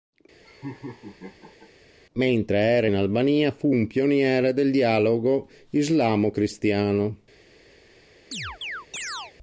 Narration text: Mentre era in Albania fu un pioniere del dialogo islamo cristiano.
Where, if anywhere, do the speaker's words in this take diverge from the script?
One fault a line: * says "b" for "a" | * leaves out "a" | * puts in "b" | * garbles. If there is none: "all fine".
all fine